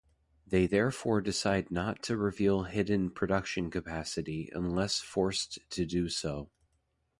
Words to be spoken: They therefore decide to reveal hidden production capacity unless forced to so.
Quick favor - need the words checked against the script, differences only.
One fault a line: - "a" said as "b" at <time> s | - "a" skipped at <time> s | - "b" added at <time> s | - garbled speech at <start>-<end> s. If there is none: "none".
- "not" added at 1.7 s
- "do" added at 5.8 s